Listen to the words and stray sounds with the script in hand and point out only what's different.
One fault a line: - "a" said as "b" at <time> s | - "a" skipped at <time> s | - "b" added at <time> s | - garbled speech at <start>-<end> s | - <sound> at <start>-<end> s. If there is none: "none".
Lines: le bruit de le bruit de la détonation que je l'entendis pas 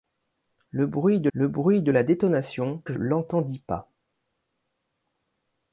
none